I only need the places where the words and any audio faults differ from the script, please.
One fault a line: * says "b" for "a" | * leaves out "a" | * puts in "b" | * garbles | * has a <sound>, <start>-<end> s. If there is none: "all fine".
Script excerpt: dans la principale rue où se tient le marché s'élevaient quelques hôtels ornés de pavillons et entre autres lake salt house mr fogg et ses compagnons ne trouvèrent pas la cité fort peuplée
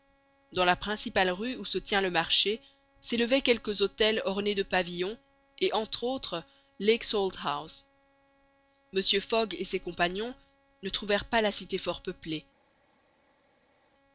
all fine